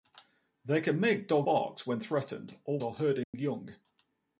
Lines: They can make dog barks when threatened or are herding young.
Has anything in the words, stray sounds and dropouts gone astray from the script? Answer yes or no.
yes